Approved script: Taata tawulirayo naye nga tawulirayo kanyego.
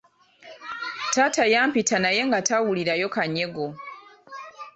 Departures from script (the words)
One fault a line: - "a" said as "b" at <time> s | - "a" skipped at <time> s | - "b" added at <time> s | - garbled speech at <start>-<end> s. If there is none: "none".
- "tawulirayo" said as "yampita" at 1.5 s